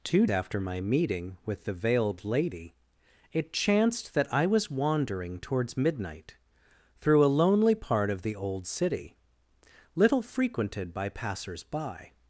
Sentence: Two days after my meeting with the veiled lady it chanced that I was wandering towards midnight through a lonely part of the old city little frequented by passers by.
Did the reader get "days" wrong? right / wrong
wrong